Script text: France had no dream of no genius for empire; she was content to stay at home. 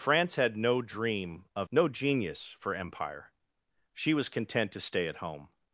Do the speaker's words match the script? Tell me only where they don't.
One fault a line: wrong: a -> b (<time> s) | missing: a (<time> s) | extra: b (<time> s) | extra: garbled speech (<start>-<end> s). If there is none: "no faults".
no faults